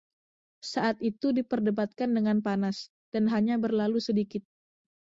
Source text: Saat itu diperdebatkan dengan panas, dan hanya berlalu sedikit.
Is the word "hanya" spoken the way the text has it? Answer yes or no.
yes